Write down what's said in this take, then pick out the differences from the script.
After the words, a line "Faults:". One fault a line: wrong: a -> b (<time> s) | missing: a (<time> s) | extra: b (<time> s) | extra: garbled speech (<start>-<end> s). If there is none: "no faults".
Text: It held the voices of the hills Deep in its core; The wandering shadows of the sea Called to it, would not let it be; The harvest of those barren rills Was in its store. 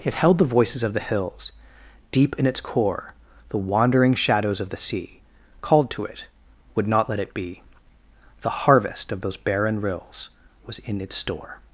It held the voices of the hills Deep in its core; The wandering shadows of the sea Called to it, would not let it be; The harvest of those barren rills Was in its store.
Faults:
no faults